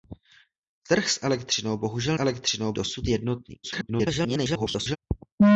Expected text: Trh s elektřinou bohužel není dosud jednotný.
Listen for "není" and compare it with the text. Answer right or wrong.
wrong